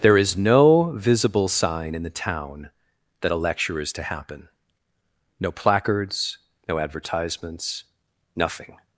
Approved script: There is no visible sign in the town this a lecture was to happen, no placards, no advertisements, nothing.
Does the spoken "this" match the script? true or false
false